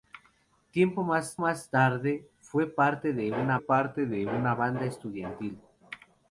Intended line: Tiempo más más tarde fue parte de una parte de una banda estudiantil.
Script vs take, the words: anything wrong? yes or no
no